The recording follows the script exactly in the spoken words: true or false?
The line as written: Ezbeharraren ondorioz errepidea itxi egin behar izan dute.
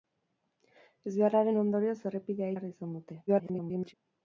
false